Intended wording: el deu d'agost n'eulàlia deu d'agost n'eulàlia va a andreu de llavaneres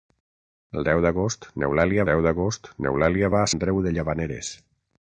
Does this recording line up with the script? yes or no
yes